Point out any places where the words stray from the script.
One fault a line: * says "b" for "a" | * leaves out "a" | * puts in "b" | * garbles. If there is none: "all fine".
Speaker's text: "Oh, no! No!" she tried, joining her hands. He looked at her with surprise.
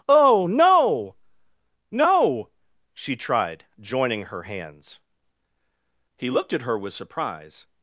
all fine